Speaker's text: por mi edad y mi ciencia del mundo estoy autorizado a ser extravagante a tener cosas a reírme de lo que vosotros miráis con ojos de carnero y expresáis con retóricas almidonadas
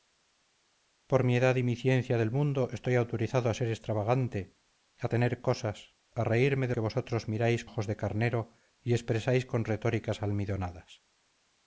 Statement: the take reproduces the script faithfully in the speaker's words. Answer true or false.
false